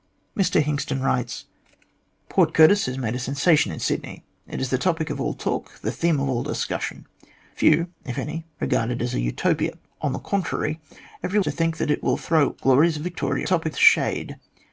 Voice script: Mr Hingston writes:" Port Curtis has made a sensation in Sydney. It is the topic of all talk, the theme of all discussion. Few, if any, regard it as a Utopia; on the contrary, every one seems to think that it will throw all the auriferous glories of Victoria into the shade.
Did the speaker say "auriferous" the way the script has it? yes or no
no